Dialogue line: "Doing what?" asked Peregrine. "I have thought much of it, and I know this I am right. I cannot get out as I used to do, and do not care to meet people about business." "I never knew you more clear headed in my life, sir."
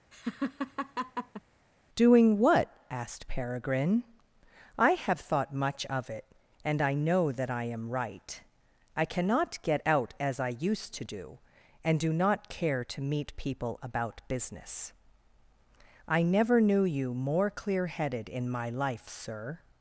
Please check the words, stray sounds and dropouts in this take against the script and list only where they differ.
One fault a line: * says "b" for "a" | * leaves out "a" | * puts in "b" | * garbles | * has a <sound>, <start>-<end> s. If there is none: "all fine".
* has a laugh, 0.1-1.4 s
* says "that" for "this"